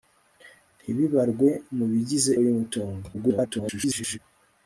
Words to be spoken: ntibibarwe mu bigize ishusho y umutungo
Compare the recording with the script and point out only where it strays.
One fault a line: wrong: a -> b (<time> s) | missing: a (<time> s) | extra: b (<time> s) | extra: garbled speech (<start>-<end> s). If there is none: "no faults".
missing: ishusho (2.3 s)
extra: garbled speech (3.1-4.2 s)